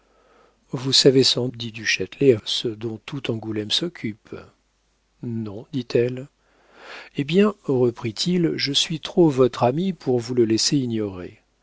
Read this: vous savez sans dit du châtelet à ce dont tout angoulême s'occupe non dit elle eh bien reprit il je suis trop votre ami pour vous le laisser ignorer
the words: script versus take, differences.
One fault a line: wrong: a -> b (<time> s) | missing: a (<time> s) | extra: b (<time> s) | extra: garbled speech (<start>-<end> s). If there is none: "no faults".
no faults